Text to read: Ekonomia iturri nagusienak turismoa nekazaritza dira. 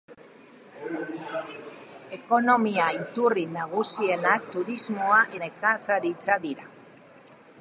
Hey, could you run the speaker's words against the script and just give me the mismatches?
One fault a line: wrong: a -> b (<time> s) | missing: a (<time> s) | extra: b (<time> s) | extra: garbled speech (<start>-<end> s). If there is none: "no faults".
no faults